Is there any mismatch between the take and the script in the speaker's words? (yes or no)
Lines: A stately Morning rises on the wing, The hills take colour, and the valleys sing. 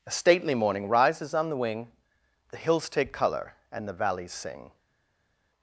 no